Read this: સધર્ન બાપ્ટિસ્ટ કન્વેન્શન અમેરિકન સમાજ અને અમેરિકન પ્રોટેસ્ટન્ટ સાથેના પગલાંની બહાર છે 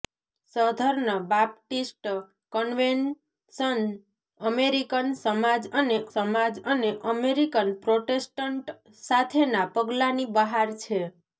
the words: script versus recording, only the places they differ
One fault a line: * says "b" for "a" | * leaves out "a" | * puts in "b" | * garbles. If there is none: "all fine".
* puts in "સમાજ અને"